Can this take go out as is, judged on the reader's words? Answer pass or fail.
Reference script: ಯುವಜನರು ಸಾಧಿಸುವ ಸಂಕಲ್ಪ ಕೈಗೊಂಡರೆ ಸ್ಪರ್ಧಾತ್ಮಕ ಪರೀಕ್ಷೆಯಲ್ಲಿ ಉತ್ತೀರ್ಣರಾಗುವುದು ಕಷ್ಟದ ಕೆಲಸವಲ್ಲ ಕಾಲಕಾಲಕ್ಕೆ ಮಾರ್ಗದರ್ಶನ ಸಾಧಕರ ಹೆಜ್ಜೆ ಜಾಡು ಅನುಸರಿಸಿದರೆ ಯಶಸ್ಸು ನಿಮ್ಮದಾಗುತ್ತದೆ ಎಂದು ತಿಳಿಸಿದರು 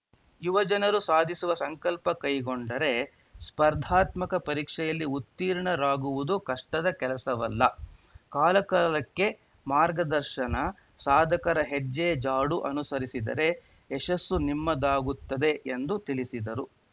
pass